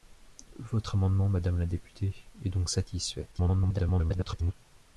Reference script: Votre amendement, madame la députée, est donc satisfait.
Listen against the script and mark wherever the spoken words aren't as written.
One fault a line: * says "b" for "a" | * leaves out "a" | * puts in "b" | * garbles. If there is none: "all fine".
* garbles